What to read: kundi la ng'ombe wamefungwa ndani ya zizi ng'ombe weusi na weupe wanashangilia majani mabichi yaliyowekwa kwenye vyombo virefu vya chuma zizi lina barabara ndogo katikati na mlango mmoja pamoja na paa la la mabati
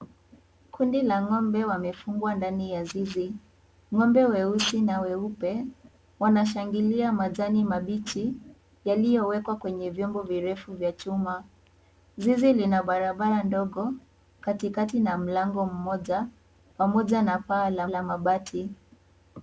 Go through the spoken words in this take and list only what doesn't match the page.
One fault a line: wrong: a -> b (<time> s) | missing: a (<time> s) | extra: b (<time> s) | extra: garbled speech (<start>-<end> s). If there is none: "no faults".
no faults